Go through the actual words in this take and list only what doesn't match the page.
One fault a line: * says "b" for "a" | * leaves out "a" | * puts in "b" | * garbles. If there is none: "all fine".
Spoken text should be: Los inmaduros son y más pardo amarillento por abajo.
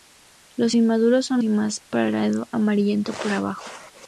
all fine